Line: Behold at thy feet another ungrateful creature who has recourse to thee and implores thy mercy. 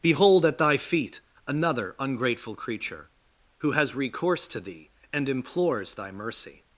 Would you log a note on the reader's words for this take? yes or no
no